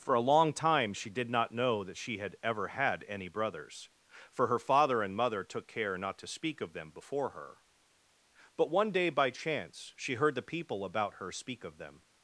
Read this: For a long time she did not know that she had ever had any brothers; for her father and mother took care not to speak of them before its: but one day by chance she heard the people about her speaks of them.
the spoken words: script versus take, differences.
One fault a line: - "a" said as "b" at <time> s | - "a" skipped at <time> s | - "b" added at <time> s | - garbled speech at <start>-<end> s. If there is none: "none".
- "its" said as "her" at 7.3 s
- "speaks" said as "speak" at 11.3 s